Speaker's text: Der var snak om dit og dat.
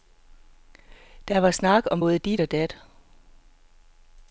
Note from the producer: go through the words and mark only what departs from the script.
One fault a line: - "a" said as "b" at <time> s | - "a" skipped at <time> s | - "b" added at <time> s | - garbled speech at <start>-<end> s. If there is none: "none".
- "både" added at 2.0 s